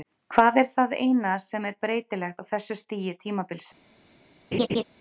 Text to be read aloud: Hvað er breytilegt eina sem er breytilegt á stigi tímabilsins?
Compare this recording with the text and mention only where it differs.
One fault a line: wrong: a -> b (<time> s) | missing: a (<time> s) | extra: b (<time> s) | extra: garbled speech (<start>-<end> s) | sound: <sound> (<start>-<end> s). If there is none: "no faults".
wrong: breytilegt -> það (0.8 s)
extra: þessu (2.5 s)
sound: laugh (4.5-4.8 s)